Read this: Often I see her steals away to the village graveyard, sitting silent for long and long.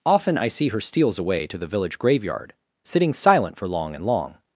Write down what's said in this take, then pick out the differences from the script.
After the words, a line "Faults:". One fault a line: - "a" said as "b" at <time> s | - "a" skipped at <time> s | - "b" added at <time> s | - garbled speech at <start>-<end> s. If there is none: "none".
Often I see her steals away to the village graveyard, sitting silent for long and long.
Faults:
none